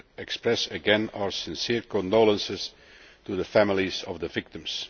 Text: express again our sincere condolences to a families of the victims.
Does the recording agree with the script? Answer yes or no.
no